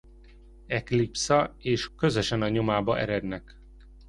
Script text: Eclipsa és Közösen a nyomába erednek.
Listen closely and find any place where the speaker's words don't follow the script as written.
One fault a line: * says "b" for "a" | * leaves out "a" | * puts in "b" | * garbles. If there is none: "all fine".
all fine